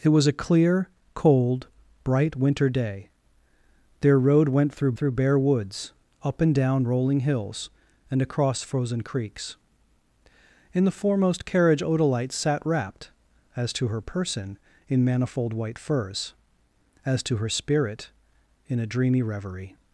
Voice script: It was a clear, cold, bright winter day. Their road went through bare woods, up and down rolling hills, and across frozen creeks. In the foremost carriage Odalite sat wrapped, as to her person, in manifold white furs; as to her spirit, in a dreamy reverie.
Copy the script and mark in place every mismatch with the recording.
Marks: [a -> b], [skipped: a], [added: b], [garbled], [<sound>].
It was a clear, cold, bright winter day. Their road went through [added: through] bare woods, up and down rolling hills, and across frozen creeks. In the foremost carriage Odalite sat wrapped, as to her person, in manifold white furs; as to her spirit, in a dreamy reverie.